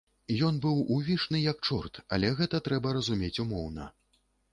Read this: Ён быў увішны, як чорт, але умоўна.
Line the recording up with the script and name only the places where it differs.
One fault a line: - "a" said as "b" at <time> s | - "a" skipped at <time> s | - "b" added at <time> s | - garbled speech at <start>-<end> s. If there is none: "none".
- "гэта трэба разумець" added at 2.4 s